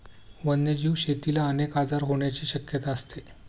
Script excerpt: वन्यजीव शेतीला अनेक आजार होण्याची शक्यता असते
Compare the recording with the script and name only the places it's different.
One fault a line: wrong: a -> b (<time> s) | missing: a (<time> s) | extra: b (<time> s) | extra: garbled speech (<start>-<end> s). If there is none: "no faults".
no faults